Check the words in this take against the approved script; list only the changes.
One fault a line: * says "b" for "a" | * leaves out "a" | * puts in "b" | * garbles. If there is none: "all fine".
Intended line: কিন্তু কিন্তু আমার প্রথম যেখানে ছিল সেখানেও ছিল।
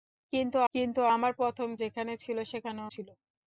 all fine